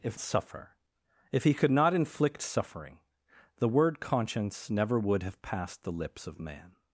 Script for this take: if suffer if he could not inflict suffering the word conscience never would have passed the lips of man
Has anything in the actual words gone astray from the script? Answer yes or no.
no